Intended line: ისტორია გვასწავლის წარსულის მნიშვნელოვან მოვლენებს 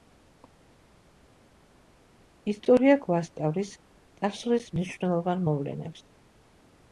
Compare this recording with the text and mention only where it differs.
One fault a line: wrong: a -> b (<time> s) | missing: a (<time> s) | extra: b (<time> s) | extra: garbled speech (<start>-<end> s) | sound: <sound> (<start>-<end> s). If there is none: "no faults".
no faults